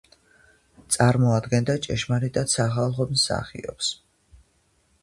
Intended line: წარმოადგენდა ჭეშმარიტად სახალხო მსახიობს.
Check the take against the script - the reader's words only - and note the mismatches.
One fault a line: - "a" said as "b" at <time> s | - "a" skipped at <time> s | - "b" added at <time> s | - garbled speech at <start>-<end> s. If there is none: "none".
none